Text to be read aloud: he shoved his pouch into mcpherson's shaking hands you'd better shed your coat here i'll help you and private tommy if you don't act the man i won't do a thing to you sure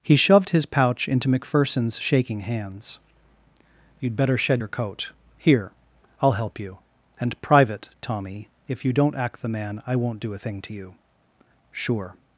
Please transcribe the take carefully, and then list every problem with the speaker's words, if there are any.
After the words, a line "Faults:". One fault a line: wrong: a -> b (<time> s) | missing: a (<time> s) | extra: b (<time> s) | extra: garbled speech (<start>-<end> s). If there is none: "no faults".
he shoved his pouch into mcpherson's shaking hands you'd better shed your coat here i'll help you and private tommy if you don't act the man i won't do a thing to you sure
Faults:
no faults